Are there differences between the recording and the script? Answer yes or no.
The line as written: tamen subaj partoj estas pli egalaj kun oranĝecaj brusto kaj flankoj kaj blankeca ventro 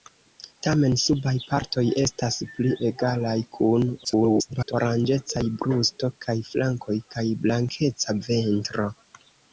yes